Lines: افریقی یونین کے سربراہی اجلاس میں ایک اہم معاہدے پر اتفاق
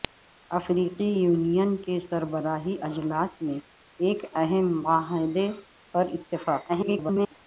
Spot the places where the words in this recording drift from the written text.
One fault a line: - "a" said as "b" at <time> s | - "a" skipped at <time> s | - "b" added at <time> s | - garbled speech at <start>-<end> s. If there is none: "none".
- garbled speech at 6.7-7.3 s